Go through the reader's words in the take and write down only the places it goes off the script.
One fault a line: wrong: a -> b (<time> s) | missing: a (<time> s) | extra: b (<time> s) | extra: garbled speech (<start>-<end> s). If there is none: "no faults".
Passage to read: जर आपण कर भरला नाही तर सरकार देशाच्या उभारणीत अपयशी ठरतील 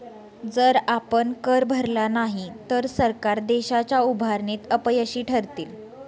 no faults